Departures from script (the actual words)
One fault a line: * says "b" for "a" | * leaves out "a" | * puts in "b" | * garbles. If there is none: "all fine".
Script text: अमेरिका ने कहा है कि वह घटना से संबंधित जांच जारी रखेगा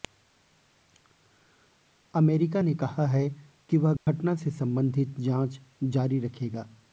all fine